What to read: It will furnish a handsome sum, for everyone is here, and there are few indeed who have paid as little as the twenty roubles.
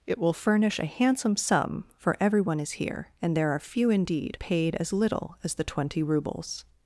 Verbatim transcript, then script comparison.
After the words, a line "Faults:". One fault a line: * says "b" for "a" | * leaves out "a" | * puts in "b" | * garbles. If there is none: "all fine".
It will furnish a handsome sum, for everyone is here, and there are few indeed paid as little as the twenty roubles.
Faults:
* leaves out "who have"